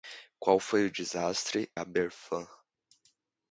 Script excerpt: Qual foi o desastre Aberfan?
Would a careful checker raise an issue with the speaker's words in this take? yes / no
no